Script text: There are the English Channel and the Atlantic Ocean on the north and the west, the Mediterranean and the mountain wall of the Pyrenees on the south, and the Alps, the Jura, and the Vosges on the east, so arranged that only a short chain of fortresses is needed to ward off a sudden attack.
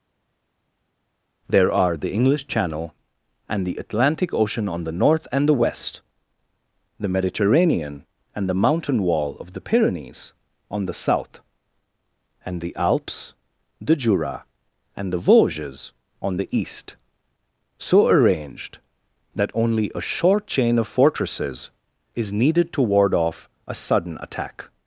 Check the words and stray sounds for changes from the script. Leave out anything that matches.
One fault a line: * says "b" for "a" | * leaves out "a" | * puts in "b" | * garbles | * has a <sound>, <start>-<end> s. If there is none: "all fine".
all fine